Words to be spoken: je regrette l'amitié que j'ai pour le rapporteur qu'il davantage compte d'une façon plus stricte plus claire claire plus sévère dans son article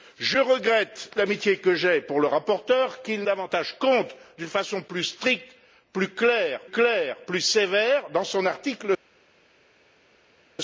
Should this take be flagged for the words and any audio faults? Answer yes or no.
no